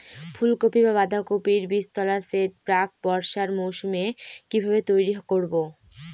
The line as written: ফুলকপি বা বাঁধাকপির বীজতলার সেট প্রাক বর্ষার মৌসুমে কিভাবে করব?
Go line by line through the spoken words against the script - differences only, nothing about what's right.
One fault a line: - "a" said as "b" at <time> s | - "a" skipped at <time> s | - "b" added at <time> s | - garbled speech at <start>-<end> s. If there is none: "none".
- "তৈরি" added at 4.9 s